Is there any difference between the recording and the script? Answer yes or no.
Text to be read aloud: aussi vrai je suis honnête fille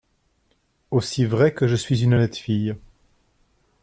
yes